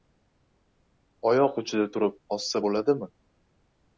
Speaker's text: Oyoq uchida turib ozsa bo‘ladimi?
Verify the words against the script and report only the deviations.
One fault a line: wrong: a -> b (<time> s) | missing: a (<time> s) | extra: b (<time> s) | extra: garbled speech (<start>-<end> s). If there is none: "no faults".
no faults